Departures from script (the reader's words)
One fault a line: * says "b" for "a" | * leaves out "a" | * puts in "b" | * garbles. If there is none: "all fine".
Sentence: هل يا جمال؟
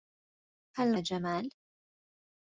all fine